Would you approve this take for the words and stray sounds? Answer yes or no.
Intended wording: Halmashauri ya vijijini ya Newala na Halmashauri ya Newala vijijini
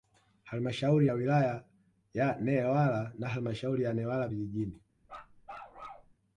no